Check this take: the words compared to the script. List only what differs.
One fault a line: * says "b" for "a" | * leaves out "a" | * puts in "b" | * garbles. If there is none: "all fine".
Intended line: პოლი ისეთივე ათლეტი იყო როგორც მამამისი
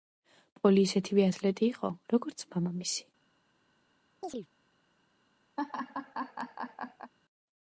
all fine